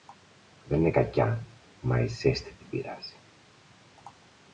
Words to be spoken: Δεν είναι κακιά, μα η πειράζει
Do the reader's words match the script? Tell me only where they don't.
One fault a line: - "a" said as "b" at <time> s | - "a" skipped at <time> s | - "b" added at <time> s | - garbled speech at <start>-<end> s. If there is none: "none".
- "ζέστη την" added at 2.1 s